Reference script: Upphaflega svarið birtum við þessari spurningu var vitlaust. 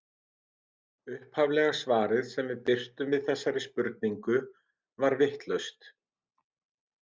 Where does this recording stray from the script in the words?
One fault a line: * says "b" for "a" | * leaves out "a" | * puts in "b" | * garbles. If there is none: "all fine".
* puts in "sem við"